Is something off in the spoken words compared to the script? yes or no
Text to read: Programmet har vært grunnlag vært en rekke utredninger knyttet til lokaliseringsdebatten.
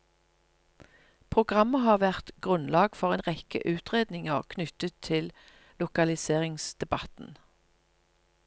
yes